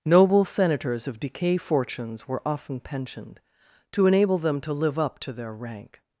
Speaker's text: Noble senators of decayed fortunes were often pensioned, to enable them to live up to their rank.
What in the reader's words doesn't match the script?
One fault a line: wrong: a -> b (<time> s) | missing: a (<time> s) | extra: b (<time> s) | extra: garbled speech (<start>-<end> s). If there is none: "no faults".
wrong: decayed -> decay (1.2 s)